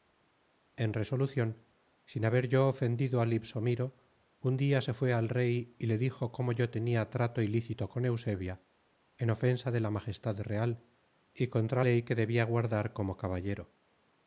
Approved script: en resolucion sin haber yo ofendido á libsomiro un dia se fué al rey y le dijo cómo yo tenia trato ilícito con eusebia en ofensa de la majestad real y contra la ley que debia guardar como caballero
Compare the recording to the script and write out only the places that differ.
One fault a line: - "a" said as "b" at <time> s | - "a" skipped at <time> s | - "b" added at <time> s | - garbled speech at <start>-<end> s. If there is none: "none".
- "la" skipped at 11.8 s